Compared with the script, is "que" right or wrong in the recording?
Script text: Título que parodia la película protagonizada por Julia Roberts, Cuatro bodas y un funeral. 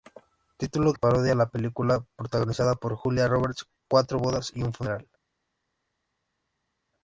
wrong